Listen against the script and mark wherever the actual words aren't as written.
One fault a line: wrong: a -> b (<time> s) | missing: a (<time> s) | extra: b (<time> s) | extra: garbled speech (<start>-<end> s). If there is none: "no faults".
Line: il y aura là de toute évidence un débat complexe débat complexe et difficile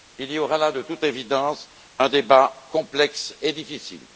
missing: débat complexe (3.3 s)